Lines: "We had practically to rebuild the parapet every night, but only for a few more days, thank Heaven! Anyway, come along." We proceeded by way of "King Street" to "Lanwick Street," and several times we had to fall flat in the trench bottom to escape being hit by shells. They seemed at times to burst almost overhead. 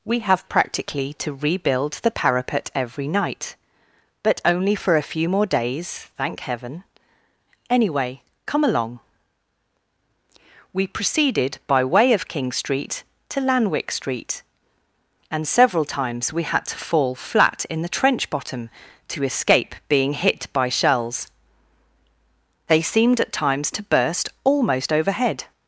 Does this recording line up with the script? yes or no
no